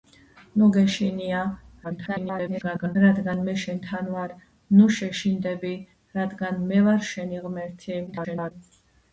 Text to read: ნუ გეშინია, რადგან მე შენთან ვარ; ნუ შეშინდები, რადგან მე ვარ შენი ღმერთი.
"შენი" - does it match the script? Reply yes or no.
yes